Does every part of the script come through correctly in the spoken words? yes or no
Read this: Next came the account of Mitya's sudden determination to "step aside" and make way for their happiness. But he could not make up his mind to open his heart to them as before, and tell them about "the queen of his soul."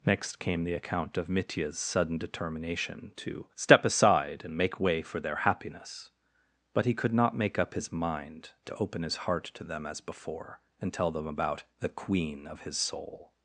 yes